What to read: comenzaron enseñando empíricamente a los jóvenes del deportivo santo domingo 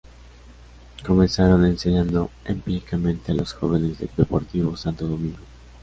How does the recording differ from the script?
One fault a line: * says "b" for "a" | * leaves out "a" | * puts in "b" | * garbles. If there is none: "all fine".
all fine